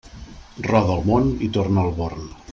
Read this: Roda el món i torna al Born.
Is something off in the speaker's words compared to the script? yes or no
no